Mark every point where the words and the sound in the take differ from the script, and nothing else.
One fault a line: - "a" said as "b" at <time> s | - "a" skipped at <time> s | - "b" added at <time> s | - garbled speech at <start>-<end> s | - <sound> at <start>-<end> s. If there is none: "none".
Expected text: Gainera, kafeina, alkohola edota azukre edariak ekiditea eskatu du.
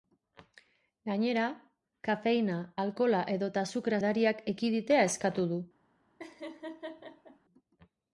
- laugh at 6.2-7.4 s